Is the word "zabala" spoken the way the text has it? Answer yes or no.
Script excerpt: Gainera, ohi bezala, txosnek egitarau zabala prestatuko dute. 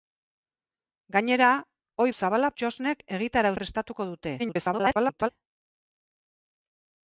no